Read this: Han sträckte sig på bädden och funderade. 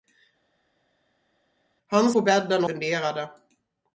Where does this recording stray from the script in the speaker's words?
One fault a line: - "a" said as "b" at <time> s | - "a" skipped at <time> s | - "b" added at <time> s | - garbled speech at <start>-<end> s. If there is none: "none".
- "sträckte sig" skipped at 2.1 s
- "och" skipped at 2.6 s